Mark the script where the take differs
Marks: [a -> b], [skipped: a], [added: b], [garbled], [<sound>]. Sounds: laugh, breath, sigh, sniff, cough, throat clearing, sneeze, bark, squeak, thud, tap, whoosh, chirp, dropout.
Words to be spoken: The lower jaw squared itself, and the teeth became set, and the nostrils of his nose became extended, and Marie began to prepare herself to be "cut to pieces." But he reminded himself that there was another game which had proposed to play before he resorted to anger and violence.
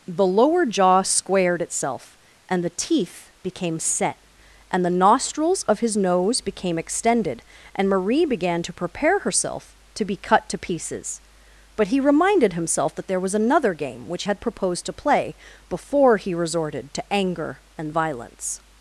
The lower jaw squared itself, and the teeth became set, and the nostrils of his nose became extended, and Marie began to prepare herself to be "cut to pieces." But he reminded himself that there was another game which had proposed to play before he resorted to anger and violence.